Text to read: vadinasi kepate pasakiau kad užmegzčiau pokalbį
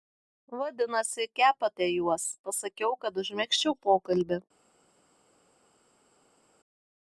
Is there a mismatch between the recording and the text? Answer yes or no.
yes